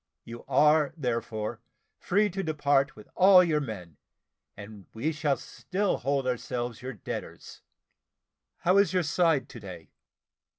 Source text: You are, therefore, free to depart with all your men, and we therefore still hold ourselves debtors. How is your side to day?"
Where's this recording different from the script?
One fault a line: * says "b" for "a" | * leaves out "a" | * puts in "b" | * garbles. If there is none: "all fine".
* says "shall" for "therefore"
* puts in "your"